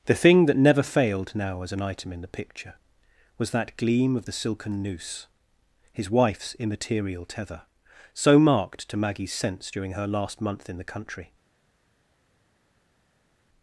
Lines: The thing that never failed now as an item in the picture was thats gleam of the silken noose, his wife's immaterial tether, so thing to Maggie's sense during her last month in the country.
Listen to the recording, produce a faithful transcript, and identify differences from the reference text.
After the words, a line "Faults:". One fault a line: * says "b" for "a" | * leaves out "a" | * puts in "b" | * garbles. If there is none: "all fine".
The thing that never failed now as an item in the picture was that gleam of the silken noose, his wife's immaterial tether, so marked to Maggie's sense during her last month in the country.
Faults:
* says "that" for "thats"
* says "marked" for "thing"